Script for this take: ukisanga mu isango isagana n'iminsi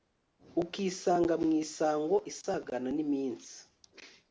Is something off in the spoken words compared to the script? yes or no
no